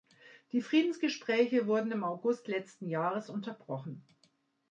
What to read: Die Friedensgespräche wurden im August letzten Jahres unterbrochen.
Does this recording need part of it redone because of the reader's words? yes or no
no